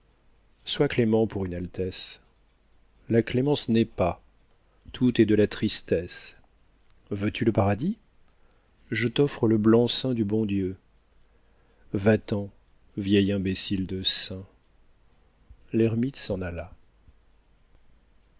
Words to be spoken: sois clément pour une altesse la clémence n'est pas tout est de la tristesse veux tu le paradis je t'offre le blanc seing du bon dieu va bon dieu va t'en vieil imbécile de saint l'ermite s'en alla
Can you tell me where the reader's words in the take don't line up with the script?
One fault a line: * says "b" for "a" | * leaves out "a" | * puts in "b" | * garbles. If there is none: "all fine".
* leaves out "bon dieu va"